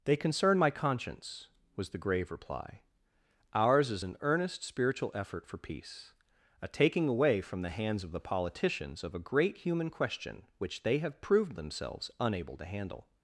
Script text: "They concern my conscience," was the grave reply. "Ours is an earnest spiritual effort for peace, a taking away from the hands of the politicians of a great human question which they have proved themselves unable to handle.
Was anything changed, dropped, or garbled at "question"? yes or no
no